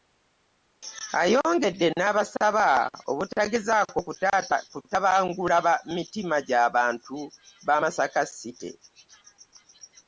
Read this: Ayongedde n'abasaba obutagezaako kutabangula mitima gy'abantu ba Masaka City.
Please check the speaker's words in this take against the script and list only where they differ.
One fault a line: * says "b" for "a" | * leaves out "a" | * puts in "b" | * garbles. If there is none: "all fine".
all fine